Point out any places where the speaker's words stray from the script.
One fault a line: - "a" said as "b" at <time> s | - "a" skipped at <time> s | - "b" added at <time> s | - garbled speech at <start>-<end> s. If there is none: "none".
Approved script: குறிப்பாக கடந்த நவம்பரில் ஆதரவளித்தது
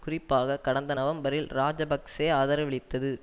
- "இராஜபக்ஷ" added at 1.5 s